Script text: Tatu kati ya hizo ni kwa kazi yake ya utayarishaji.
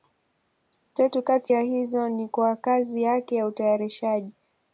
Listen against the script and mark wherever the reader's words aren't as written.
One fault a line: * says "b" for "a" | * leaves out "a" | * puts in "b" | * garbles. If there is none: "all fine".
all fine